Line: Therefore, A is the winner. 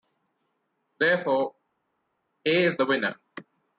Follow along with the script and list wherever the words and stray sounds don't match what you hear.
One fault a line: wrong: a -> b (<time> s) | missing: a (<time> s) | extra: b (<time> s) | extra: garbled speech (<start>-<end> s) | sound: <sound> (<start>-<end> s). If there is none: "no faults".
no faults